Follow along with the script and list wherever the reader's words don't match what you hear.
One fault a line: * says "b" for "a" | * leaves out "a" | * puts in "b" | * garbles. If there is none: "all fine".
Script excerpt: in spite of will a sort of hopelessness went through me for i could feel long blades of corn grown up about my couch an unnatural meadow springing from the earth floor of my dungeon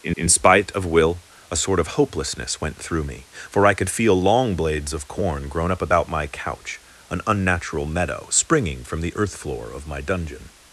* puts in "in"